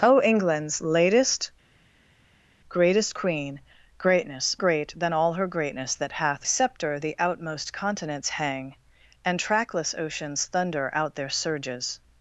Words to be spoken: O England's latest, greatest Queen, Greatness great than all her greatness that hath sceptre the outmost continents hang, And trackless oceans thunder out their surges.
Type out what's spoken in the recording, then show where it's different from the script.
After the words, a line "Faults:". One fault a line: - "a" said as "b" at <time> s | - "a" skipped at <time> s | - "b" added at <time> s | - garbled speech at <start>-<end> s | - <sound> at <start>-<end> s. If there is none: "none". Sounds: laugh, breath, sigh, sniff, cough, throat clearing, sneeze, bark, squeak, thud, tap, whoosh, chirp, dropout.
O England's latest, greatest Queen, Greatness great than all her greatness that hath sceptre the outmost continents hang, And trackless oceans thunder out their surges.
Faults:
none